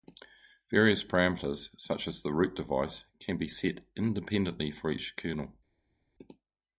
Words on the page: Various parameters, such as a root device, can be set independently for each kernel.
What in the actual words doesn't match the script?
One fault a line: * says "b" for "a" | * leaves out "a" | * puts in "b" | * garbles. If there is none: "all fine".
* says "the" for "a"